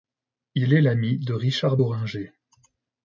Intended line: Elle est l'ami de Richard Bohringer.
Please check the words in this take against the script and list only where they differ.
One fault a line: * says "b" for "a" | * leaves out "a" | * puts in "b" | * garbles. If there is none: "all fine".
* says "Il" for "Elle"